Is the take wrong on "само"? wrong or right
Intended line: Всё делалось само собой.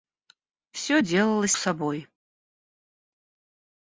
wrong